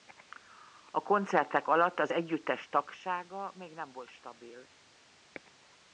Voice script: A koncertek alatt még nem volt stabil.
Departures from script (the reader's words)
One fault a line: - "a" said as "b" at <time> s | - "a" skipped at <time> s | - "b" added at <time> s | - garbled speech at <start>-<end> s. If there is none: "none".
- "az együttes tagsága" added at 2.0 s